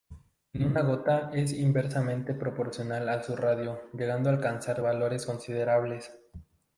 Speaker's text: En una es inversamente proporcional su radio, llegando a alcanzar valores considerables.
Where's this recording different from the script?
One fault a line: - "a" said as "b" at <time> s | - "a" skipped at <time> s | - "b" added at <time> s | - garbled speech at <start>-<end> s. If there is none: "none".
- "gota" added at 0.8 s
- "a" added at 3.1 s